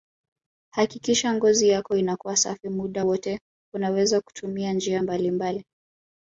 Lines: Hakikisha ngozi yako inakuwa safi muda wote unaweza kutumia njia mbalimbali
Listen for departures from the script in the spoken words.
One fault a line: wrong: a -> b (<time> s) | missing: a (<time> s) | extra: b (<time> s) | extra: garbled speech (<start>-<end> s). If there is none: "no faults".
no faults